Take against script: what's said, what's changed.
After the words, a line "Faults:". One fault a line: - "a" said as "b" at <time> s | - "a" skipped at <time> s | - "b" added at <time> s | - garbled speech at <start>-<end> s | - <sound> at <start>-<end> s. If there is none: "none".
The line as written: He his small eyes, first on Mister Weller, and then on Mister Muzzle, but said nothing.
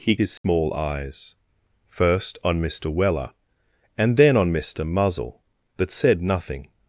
He his small eyes, first on Mister Weller, and then on Mister Muzzle, but said nothing.
Faults:
- dropout at 0.4-0.4 s